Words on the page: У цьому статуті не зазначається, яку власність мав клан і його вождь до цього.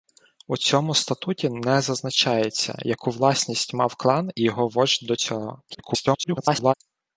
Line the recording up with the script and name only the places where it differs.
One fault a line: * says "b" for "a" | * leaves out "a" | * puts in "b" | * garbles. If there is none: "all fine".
* garbles